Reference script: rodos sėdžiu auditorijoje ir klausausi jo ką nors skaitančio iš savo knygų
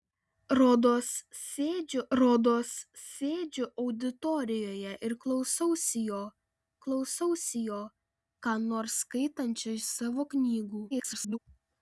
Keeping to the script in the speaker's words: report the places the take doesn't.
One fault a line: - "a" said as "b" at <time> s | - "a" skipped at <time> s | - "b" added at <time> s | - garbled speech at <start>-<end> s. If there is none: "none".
- "rodos sėdžiu" added at 2.2 s
- "klausausi jo" added at 6.9 s
- garbled speech at 10.9-11.4 s